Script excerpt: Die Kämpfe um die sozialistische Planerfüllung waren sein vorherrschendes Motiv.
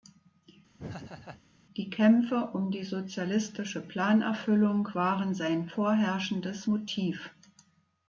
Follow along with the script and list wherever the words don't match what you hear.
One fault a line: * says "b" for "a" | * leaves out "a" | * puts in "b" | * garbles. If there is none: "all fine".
all fine